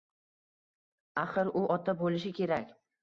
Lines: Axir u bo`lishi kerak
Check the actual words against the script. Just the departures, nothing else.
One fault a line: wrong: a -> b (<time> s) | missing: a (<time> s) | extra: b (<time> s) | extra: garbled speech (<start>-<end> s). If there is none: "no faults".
extra: ota (1.7 s)